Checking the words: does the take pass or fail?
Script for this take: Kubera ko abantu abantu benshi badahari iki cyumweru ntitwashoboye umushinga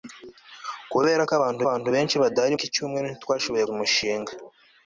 pass